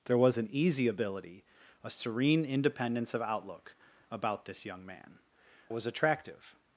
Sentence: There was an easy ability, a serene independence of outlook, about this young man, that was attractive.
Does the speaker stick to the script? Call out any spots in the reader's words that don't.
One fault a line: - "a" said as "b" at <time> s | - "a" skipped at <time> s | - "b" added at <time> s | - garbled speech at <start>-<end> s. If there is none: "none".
- "that" skipped at 5.2 s